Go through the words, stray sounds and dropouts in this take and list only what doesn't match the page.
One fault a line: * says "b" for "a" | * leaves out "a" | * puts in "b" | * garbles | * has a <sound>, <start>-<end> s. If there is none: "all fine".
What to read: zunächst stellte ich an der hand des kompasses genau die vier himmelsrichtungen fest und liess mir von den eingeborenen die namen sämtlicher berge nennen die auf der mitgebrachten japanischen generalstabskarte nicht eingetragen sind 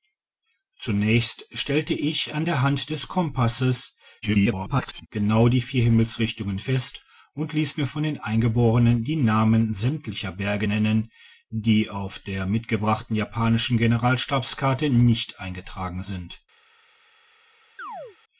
* garbles
* has a chirp, 17.8-18.2 s